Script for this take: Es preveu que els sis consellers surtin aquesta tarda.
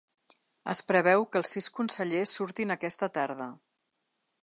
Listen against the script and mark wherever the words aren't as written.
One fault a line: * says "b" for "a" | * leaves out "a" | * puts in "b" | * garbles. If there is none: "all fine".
all fine